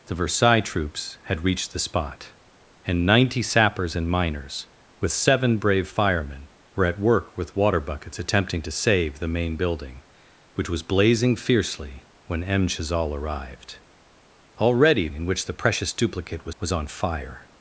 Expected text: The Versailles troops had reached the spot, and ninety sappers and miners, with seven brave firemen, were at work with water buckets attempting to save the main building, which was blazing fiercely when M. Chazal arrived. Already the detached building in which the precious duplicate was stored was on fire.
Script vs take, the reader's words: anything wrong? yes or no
yes